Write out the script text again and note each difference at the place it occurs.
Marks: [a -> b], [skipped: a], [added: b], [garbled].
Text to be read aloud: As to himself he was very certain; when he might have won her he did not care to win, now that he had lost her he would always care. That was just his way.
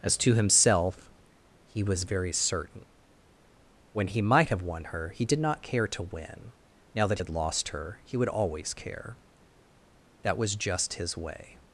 As to himself he was very certain; when he might have won her he did not care to win, now that [skipped: he] had lost her he would always care. That was just his way.